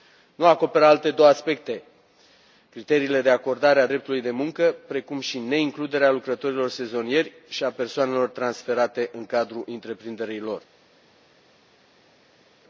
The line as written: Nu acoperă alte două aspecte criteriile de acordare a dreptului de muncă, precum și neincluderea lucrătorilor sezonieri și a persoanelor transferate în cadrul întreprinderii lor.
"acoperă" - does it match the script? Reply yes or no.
yes